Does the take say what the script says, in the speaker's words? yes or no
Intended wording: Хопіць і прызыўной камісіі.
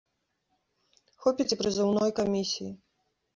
yes